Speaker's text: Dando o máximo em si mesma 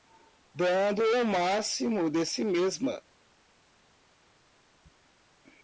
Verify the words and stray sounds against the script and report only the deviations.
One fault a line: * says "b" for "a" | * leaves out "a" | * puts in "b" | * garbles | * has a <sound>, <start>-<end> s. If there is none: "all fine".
* says "de" for "em"